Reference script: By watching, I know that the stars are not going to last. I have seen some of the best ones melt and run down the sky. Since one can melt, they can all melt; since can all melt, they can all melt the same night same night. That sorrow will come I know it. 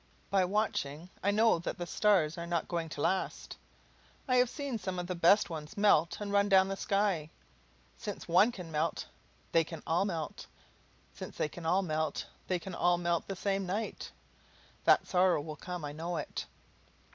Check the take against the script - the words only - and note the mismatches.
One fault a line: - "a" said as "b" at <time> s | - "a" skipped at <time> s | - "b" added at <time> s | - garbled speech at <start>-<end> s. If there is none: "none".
- "they" added at 11.4 s
- "same night" skipped at 14.1 s